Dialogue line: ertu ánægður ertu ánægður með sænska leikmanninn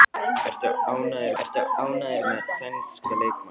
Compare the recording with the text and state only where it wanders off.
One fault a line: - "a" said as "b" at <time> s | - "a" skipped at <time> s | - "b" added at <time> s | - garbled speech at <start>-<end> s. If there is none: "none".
none